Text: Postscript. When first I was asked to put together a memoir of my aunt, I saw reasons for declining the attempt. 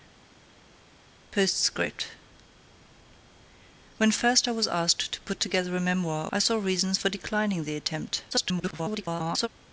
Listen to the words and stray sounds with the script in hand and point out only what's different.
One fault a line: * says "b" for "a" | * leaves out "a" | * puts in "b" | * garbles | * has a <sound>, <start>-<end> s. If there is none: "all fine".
* leaves out "of my aunt"
* garbles